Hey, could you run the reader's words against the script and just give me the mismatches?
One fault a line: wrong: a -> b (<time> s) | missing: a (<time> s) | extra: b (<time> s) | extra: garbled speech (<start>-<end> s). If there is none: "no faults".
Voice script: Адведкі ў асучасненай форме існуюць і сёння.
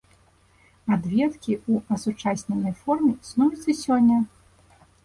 no faults